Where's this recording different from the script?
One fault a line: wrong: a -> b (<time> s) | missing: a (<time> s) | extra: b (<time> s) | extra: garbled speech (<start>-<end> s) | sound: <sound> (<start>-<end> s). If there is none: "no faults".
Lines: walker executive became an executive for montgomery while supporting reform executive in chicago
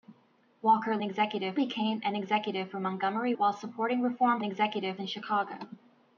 no faults